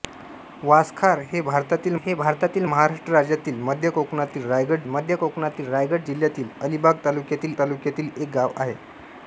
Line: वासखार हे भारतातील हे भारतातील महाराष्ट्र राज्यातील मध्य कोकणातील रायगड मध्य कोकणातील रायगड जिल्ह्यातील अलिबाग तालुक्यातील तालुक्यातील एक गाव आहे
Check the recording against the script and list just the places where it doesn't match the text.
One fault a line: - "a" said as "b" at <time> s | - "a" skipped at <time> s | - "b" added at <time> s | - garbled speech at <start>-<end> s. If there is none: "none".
none